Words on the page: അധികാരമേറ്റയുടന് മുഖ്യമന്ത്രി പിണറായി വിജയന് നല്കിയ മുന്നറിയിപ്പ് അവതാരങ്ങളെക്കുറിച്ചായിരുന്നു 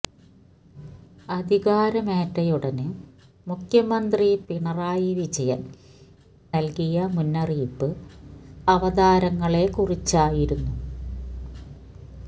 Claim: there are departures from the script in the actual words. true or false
false